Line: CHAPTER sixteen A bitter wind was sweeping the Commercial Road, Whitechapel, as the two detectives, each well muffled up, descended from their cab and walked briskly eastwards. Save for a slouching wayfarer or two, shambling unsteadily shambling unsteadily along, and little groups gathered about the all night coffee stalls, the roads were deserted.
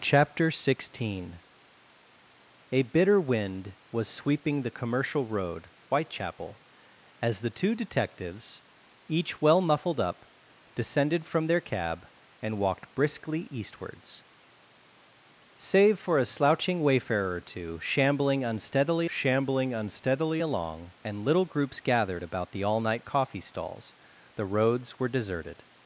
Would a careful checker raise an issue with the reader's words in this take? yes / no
no